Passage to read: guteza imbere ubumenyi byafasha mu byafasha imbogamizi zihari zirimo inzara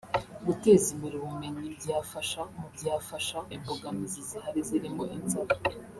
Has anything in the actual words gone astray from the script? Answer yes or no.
no